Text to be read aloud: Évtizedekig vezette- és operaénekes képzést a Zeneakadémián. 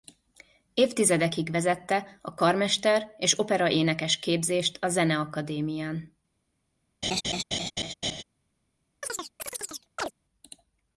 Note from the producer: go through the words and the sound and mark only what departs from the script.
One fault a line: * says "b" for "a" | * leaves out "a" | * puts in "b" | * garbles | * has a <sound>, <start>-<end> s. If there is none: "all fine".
* puts in "a karmester"
* has a laugh, 7.0-8.2 s
* has a chirp, 9.0-10.1 s